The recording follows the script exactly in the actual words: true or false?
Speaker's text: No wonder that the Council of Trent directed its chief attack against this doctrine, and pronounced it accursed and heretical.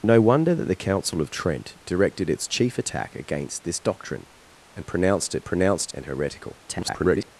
false